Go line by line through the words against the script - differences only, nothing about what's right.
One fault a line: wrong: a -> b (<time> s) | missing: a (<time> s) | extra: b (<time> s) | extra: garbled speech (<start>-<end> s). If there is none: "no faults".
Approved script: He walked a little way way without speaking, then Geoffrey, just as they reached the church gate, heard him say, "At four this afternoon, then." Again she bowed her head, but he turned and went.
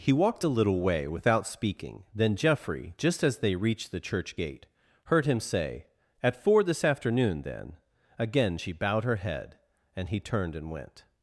missing: way (1.1 s)
wrong: but -> and (10.0 s)